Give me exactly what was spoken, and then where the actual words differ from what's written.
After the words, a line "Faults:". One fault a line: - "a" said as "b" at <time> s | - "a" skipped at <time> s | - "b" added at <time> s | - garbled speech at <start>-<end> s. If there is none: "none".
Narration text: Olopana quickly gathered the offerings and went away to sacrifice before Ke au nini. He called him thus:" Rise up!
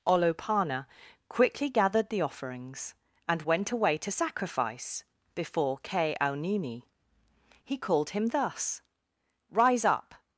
Olopana quickly gathered the offerings and went away to sacrifice before Ke au nini. He called him thus:" Rise up!
Faults:
none